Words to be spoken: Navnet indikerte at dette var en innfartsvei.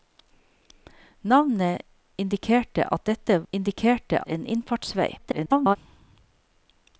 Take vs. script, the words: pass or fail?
fail